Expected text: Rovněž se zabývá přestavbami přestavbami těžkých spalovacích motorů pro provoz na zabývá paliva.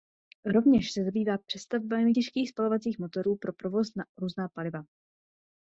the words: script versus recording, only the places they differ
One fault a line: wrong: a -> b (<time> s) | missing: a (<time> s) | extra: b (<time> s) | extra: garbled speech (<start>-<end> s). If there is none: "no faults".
missing: přestavbami (2.1 s)
wrong: zabývá -> různá (4.2 s)